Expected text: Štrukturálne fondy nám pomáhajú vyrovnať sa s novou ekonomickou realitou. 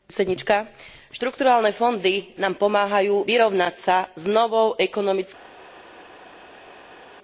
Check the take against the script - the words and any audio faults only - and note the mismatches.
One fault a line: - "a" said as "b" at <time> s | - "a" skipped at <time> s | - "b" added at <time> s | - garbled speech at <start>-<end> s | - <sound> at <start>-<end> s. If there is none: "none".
none